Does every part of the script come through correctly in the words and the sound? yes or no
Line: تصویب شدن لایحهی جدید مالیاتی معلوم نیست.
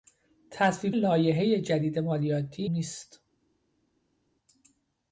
no